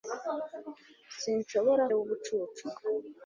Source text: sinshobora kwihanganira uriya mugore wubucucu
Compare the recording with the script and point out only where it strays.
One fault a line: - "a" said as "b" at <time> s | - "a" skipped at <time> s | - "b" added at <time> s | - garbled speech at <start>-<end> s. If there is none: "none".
- "kwihanganira uriya mugore" skipped at 1.8 s